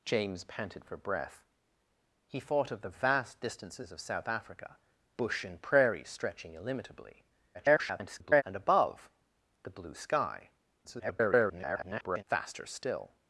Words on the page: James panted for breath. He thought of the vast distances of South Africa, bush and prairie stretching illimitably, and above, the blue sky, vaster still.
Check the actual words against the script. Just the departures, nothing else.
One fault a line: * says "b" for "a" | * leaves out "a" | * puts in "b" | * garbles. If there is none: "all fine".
* garbles
* garbles